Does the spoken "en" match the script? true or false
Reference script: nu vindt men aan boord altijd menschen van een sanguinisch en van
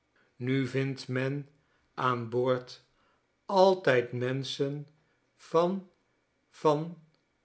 false